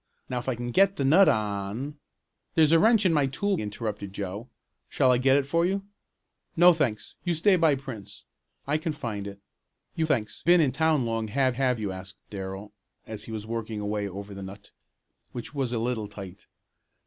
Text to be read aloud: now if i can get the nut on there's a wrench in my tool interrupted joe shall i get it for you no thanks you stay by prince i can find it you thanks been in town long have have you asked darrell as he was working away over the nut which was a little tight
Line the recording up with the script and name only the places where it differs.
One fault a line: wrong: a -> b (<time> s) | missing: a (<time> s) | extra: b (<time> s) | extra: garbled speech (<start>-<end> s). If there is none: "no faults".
no faults